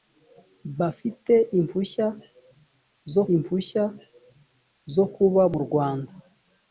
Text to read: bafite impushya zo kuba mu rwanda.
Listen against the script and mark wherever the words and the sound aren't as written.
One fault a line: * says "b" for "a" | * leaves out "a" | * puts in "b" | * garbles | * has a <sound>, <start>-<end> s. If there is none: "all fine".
* puts in "impushya zo"